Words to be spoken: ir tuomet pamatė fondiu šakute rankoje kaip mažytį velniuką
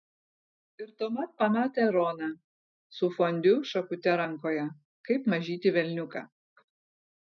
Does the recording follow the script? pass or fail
fail